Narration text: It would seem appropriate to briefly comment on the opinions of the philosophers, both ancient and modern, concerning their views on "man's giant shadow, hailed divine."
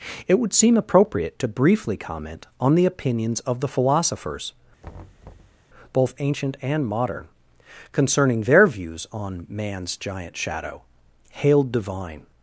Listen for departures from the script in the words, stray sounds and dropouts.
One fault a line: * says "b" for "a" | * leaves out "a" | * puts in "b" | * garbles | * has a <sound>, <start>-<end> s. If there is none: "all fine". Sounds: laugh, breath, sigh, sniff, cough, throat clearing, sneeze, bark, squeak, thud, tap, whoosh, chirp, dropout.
* has a thud, 4.8-5.6 s